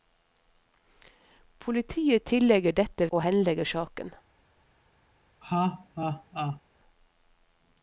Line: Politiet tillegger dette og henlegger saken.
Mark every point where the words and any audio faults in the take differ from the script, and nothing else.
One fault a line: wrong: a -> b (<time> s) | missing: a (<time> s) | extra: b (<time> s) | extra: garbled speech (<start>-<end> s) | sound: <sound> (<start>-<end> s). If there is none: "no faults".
sound: laugh (5.4-6.6 s)